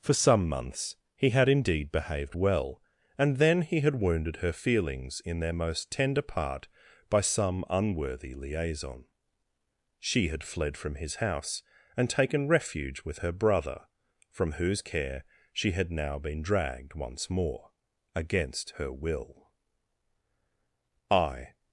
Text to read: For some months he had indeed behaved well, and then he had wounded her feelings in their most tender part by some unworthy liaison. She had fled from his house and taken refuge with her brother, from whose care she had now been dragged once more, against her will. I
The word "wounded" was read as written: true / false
true